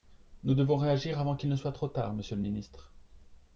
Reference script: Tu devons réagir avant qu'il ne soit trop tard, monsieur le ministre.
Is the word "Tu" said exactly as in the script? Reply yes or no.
no